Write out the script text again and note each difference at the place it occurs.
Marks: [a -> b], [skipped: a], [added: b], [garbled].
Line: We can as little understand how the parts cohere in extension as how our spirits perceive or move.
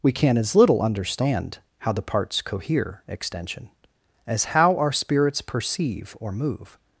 We can as little understand how the parts cohere [skipped: in] extension as how our spirits perceive or move.